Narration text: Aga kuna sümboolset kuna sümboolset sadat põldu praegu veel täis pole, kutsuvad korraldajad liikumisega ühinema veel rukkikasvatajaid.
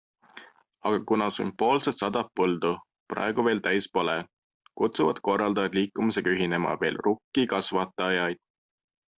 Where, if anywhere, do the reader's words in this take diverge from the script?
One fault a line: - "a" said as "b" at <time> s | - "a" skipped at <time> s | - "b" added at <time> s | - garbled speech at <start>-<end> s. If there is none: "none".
- "kuna sümboolset" skipped at 2.0 s